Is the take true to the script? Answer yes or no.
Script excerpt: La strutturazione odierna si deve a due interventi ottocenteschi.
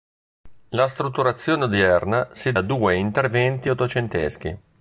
no